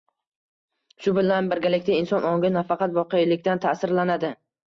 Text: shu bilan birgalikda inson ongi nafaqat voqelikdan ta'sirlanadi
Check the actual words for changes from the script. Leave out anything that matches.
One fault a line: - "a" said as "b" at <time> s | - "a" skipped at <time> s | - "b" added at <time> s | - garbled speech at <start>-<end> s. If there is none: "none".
none